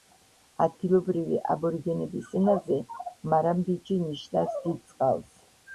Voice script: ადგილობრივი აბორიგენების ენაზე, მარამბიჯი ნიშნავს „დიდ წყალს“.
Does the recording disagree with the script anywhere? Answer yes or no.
no